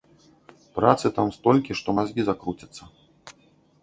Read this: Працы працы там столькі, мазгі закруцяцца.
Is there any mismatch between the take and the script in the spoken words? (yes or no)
yes